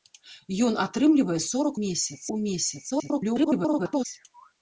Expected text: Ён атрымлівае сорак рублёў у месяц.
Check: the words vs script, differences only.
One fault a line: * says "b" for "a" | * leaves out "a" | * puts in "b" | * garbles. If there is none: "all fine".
* says "месяц" for "рублёў"
* garbles